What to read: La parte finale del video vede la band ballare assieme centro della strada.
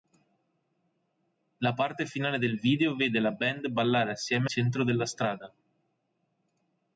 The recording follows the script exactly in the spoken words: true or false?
true